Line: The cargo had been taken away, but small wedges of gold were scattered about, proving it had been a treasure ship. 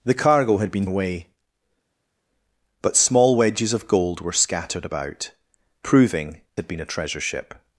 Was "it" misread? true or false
true